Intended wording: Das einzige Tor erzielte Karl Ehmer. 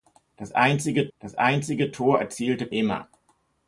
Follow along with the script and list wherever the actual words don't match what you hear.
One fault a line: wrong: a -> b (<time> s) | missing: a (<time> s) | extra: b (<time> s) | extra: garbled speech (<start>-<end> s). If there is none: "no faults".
extra: das einzige (1.2 s)
missing: Karl (2.7 s)